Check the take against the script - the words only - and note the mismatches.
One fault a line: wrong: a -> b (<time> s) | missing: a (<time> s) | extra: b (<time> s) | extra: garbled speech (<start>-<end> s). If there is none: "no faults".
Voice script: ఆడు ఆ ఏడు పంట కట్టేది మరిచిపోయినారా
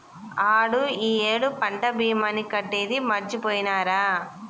wrong: ఆ -> ఈ (1.0 s)
extra: భీమాని (2.0 s)